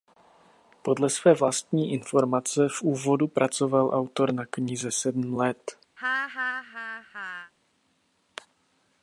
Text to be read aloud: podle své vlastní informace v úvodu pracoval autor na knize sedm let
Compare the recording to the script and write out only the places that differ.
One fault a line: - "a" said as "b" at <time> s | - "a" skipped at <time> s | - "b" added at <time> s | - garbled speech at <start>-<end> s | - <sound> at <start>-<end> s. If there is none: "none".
- laugh at 6.0-7.5 s